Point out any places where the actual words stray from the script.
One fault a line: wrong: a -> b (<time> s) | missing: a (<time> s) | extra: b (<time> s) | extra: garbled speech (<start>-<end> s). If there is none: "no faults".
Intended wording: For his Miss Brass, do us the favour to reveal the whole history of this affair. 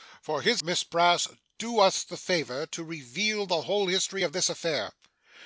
no faults